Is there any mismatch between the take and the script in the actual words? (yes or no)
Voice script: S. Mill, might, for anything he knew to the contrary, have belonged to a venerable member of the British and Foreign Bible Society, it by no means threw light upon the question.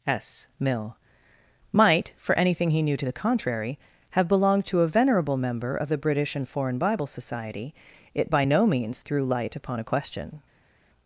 yes